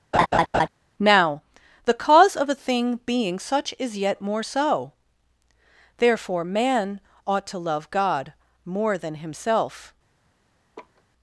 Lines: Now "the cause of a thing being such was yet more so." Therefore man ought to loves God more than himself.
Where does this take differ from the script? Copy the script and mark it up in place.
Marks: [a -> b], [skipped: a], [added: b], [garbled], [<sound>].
[laugh] Now "the cause of a thing being such [was -> is] yet more so." Therefore man ought to [loves -> love] God more than himself. [laugh]